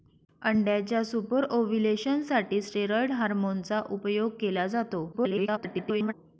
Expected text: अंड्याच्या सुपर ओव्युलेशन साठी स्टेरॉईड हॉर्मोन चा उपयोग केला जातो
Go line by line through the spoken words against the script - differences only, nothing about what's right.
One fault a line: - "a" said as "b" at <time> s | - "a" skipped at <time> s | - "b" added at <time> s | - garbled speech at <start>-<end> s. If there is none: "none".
- garbled speech at 5.1-6.1 s